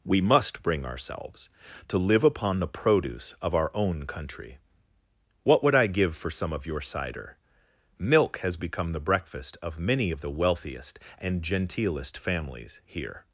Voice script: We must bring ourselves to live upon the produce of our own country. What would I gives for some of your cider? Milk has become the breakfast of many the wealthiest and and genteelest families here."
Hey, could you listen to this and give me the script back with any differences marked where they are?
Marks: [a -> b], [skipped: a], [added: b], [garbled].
We must bring ourselves to live upon the produce of our own country. What would I [gives -> give] for some of your cider? Milk has become the breakfast of many [added: of] the wealthiest and [skipped: and] genteelest families here."